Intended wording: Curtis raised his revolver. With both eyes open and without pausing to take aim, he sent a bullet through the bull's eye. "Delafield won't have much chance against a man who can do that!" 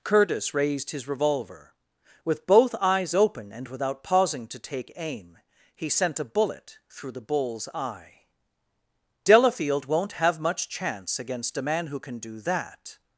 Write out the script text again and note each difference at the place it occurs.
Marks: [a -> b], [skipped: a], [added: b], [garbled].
Curtis raised his revolver. With both eyes open and without pausing to take aim, he sent a bullet through the bull's eye. "Delafield won't have much chance against a man who can do that!"